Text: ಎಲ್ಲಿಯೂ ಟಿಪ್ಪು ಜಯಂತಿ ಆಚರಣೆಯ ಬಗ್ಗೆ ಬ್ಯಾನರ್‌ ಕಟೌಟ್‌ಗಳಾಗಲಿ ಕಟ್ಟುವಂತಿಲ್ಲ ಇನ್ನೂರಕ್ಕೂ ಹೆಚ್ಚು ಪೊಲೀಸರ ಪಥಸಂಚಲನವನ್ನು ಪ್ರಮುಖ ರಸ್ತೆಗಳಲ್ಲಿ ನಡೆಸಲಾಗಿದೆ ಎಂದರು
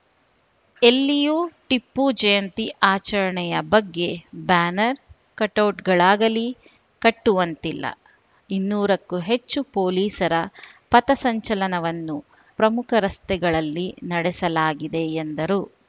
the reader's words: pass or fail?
pass